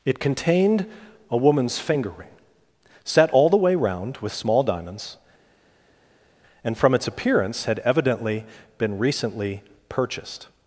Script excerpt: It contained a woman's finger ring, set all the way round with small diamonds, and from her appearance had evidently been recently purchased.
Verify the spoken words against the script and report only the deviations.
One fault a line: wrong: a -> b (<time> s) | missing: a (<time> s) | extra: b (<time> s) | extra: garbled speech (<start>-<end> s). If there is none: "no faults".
wrong: her -> its (6.9 s)